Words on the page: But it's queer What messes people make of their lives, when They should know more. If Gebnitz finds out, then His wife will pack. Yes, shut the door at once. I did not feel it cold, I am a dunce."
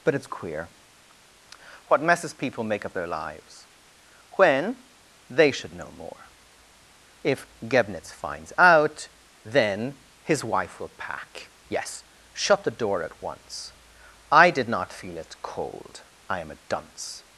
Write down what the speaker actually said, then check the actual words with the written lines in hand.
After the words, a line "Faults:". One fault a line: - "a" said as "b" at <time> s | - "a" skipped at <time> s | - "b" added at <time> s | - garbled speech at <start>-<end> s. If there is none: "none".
But it's queer What messes people make of their lives, when They should know more. If Gebnitz finds out, then His wife will pack. Yes, shut the door at once. I did not feel it cold, I am a dunce."
Faults:
none